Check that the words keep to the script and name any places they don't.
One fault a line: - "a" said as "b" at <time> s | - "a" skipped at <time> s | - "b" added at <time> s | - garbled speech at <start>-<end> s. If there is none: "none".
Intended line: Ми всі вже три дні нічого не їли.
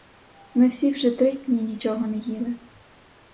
none